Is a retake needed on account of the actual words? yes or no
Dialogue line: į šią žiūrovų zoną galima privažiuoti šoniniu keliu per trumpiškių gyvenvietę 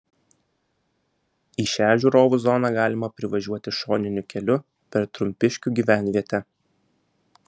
no